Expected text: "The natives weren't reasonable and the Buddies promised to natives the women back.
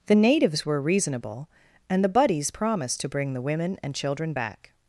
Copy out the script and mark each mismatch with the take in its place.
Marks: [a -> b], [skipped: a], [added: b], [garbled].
"The natives [weren't -> were] reasonable and the Buddies promised to [natives -> bring] the women [added: and children] back.